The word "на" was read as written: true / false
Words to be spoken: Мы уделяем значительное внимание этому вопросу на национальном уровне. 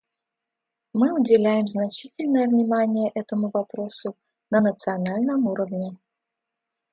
true